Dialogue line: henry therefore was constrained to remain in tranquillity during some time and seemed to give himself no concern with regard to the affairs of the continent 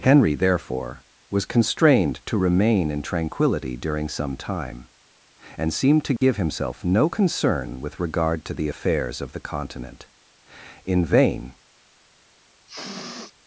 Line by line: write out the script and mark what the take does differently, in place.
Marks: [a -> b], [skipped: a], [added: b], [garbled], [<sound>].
henry therefore was constrained to remain in tranquillity during some time and seemed to give [dropout] himself no concern with regard to the affairs of the continent [added: in vain] [sniff]